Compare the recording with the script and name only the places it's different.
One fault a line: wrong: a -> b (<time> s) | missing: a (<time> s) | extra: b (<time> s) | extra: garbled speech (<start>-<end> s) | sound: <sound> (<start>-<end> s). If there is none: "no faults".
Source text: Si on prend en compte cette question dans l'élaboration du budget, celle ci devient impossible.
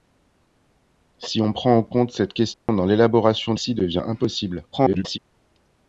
sound: dropout (2.5-2.7 s)
missing: du budget celle (3.5 s)
extra: garbled speech (4.7-5.2 s)